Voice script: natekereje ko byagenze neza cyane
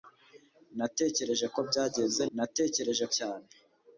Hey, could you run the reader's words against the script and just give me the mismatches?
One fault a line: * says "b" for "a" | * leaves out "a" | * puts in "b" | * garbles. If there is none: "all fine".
* says "natekereje" for "neza"